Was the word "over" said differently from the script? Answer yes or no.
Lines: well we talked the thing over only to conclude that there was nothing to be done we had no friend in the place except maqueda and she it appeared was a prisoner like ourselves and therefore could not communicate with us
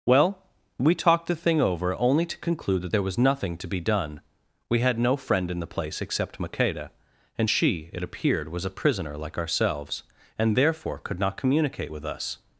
no